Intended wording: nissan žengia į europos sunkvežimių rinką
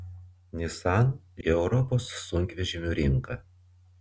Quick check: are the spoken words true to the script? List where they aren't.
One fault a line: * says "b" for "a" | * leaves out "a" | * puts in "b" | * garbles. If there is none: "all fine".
* leaves out "žengia"